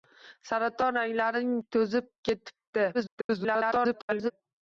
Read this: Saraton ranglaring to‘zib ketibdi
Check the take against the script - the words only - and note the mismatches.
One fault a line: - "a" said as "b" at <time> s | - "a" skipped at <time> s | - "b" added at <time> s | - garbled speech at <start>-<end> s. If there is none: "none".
- garbled speech at 2.9-4.3 s